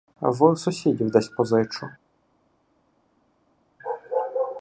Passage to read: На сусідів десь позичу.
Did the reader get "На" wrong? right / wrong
wrong